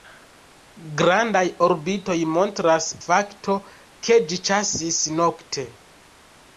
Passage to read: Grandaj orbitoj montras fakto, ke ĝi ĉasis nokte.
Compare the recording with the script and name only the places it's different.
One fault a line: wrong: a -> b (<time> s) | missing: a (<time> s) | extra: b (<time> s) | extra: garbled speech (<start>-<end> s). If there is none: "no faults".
no faults